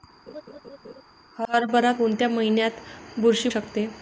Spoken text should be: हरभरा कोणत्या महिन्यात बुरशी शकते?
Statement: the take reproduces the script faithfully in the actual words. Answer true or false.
true